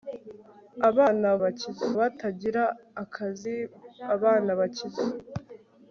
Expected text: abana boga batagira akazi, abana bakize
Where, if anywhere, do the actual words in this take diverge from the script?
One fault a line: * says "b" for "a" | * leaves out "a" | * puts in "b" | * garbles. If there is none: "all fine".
* says "bakize" for "boga"